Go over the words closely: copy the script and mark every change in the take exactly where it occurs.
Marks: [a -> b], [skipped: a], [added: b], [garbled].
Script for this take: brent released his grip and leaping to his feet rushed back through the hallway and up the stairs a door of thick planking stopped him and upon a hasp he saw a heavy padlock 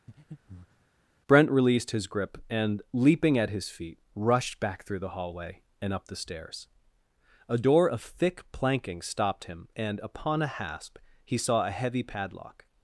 brent released his grip and leaping [to -> at] his feet rushed back through the hallway and up the stairs a door of thick planking stopped him and upon a hasp he saw a heavy padlock